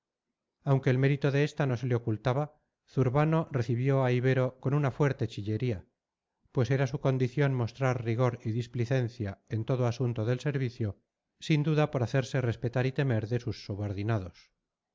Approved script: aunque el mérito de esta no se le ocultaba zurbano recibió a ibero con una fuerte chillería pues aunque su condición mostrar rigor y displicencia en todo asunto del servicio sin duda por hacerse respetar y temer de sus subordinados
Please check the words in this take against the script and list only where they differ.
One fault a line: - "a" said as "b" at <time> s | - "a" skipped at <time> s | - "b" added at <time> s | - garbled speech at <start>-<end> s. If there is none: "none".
- "aunque" said as "era" at 6.7 s